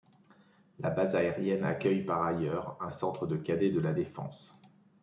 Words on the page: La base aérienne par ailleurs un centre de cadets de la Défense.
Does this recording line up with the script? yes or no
no